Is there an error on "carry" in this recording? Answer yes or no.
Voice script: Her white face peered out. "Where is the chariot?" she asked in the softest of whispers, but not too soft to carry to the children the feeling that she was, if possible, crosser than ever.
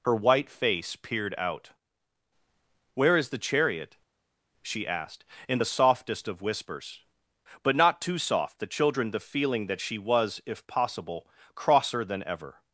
yes